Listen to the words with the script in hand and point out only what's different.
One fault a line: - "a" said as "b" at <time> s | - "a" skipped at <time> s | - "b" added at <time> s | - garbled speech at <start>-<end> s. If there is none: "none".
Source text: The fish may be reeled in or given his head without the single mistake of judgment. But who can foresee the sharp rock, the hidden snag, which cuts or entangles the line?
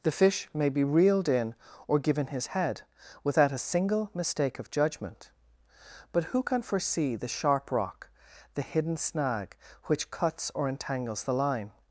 - "the" said as "a" at 3.5 s